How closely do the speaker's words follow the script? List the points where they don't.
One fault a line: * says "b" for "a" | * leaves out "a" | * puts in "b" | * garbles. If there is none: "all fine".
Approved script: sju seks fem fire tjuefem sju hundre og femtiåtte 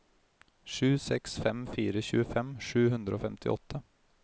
all fine